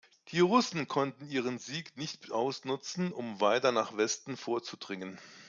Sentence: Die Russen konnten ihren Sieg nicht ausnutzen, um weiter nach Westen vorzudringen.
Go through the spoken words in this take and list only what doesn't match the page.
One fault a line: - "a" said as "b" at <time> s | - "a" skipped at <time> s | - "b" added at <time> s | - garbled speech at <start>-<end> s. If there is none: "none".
none